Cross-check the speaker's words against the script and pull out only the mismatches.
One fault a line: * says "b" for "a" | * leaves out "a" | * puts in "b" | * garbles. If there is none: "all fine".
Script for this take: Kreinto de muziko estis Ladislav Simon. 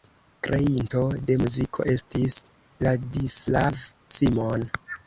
all fine